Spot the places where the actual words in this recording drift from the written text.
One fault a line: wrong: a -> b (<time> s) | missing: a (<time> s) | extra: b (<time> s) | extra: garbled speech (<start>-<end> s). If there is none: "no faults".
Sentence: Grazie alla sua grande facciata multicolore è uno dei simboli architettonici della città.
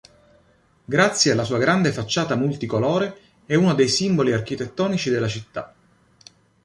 no faults